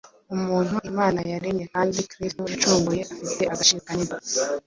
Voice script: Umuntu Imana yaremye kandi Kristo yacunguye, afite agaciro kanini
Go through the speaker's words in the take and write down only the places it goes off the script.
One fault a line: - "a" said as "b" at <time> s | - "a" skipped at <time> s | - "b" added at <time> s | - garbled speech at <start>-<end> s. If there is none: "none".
none